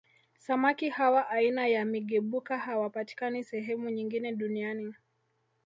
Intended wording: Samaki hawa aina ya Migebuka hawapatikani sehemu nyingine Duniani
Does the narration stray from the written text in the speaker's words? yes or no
no